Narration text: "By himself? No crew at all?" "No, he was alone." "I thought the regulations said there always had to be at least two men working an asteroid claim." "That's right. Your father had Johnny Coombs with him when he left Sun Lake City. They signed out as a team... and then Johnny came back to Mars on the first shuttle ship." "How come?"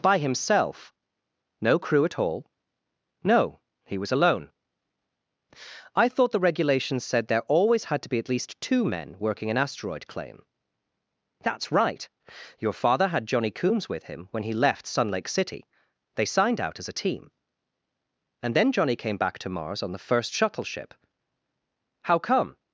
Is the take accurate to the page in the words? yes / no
yes